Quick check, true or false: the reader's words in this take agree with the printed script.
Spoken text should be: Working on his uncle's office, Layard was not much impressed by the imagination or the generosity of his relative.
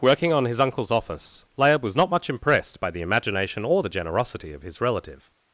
true